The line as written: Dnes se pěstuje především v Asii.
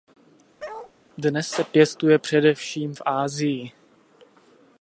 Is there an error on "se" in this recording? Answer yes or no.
no